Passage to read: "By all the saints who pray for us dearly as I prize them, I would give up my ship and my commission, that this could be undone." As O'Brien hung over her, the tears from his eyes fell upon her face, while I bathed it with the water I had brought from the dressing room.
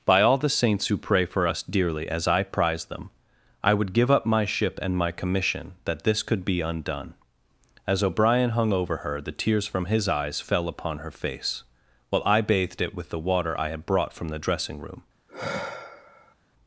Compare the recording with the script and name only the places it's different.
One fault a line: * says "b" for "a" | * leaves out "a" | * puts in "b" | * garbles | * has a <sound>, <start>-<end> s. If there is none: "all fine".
* has a sigh, 15.3-16.4 s